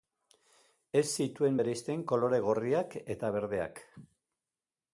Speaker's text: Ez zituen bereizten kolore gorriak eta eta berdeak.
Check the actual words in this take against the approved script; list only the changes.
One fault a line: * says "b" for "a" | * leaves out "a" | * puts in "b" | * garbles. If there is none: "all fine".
* leaves out "eta"